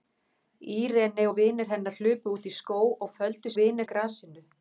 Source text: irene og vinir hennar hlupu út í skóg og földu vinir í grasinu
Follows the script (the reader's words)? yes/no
yes